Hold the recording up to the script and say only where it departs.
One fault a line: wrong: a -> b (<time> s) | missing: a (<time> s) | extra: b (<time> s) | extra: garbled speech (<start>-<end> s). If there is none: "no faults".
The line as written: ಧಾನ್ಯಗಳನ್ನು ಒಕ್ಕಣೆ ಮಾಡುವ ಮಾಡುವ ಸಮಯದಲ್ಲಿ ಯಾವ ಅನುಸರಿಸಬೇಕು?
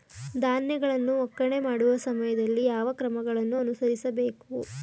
missing: ಮಾಡುವ (2.0 s)
extra: ಕ್ರಮಗಳನ್ನು (2.9 s)